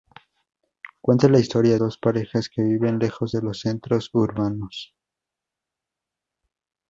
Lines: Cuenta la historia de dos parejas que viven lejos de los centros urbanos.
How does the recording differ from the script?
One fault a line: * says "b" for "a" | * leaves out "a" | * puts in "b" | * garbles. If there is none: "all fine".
* leaves out "de"